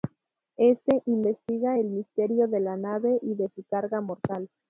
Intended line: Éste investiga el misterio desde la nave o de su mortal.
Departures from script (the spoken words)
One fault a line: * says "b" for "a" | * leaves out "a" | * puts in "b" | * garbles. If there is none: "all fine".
* says "de" for "desde"
* says "y" for "o"
* puts in "carga"